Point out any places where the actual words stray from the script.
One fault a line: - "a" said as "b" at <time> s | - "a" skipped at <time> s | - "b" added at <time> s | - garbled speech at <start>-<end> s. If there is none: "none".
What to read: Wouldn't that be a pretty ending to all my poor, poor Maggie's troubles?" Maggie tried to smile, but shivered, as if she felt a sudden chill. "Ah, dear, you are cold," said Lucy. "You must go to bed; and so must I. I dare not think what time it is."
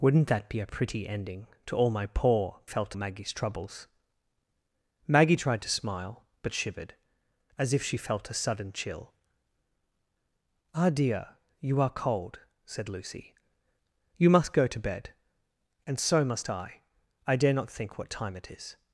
- "poor" said as "felt" at 2.6 s